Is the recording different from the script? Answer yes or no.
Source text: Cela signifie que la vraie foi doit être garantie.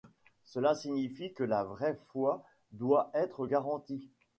no